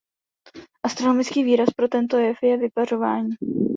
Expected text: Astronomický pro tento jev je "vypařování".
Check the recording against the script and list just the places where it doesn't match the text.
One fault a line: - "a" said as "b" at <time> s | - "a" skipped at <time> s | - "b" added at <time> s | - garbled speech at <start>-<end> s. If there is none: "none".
- "výraz" added at 1.4 s